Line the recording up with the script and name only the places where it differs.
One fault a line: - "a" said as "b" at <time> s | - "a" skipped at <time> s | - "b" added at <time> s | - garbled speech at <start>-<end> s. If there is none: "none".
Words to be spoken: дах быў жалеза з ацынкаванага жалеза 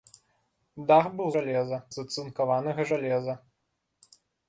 none